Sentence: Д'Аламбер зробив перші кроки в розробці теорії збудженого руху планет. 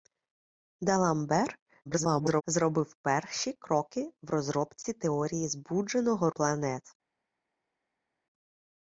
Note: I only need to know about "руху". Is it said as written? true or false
false